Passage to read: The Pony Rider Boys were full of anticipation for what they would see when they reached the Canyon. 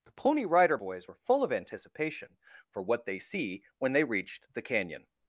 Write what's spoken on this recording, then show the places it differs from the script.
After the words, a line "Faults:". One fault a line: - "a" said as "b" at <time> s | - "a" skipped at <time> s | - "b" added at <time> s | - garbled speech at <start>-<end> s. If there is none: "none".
The Pony Rider Boys were full of anticipation for what they see when they reached the Canyon.
Faults:
- "would" skipped at 3.2 s